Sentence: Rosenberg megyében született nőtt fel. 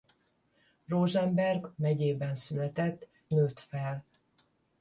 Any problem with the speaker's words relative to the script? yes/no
no